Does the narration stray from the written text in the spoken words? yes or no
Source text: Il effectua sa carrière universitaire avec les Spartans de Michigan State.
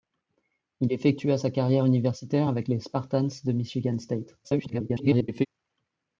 yes